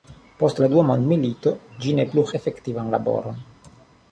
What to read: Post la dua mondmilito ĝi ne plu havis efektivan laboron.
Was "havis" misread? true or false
true